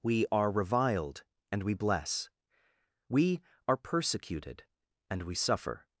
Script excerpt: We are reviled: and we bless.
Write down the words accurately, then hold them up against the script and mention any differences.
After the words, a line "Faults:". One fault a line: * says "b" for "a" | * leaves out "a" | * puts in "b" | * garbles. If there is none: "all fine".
We are reviled: and we bless. We are persecuted: and we suffer
Faults:
* puts in "We are persecuted and we suffer"